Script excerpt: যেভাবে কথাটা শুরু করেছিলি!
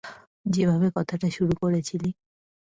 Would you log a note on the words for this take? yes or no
no